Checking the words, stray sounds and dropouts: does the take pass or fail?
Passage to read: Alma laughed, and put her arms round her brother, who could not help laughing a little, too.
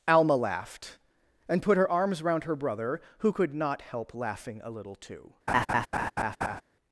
fail